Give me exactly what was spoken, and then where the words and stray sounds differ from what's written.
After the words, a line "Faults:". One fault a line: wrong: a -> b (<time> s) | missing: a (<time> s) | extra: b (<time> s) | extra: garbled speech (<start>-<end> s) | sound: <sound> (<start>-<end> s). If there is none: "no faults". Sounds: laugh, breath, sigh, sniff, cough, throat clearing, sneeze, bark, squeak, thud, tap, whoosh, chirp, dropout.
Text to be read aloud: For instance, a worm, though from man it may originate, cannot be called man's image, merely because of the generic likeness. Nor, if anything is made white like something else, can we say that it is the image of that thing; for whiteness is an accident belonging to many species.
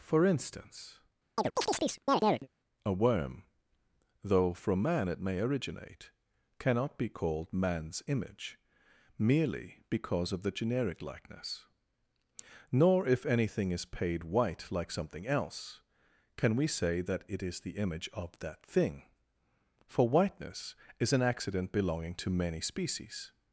For instance, a worm, though from man it may originate, cannot be called man's image, merely because of the generic likeness. Nor, if anything is paid white like something else, can we say that it is the image of that thing; for whiteness is an accident belonging to many species.
Faults:
sound: chirp (1.4-2.5 s)
wrong: made -> paid (13.9 s)